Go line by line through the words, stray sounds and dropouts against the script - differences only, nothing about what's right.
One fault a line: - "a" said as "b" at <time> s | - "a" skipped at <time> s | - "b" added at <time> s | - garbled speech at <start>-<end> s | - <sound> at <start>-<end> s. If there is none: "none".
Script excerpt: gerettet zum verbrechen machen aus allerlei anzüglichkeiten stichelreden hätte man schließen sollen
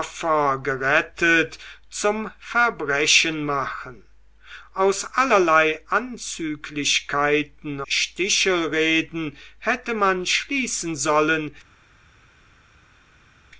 none